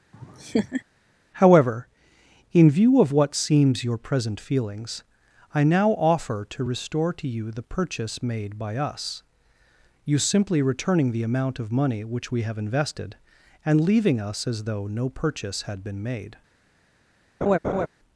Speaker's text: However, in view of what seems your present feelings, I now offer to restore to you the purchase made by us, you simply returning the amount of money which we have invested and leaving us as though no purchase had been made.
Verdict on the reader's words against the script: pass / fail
pass